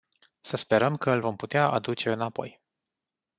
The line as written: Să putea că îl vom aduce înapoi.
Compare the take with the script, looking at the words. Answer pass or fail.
fail